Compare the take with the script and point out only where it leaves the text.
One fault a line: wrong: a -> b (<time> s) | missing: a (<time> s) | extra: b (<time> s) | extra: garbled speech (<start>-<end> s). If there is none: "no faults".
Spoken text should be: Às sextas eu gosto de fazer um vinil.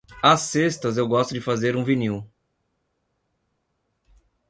no faults